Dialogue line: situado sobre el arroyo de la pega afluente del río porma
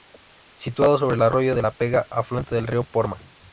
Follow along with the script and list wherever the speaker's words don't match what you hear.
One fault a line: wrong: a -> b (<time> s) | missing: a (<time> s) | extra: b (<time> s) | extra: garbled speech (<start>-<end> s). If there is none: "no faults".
no faults